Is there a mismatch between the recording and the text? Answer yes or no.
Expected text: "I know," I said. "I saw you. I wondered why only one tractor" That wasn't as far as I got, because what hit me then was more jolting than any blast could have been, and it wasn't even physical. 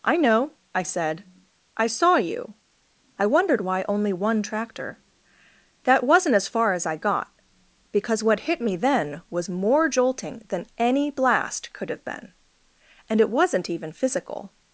no